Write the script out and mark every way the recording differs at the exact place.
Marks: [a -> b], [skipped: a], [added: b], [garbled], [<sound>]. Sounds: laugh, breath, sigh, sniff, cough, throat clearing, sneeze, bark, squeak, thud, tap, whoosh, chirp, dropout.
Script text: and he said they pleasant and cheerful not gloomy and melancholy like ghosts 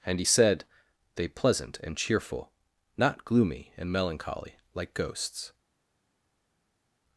and he said they pleasant and cheerful not gloomy and melancholy like ghosts